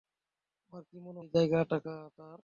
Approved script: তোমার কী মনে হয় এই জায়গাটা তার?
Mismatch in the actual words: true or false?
true